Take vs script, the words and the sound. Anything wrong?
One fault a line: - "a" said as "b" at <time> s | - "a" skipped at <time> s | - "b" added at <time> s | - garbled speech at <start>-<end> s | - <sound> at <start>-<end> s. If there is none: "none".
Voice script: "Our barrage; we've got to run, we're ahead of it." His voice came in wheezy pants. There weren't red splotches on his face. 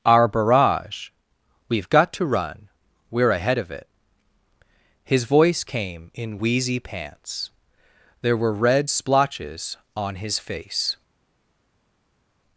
- "weren't" said as "were" at 8.4 s